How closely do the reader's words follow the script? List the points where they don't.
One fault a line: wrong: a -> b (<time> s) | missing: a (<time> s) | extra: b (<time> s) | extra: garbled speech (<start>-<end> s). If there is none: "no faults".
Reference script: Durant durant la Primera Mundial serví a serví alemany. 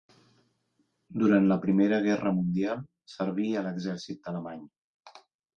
missing: durant (1.5 s)
extra: Guerra (2.1 s)
wrong: serví -> l'exèrcit (3.7 s)